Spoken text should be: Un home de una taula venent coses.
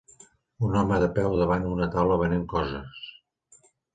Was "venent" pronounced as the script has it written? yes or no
yes